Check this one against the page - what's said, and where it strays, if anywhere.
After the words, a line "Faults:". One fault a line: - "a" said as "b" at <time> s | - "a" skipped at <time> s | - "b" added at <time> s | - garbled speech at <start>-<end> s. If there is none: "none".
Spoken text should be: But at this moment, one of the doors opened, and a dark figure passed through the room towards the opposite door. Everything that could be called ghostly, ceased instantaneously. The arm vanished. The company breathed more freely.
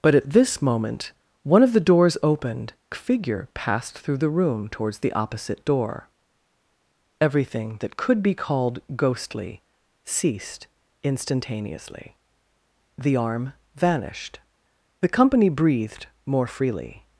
But at this moment, one of the doors opened, figure passed through the room towards the opposite door. Everything that could be called ghostly, ceased instantaneously. The arm vanished. The company breathed more freely.
Faults:
- "and a dark" skipped at 2.7 s